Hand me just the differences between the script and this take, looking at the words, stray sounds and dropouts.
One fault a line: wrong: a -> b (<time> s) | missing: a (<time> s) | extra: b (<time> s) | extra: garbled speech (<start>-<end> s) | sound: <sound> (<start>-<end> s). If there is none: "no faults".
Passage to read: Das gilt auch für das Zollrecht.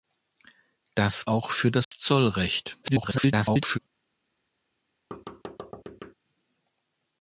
missing: gilt (1.3 s)
sound: dropout (1.8-1.9 s)
extra: garbled speech (2.8-3.8 s)
sound: thud (5.1-6.1 s)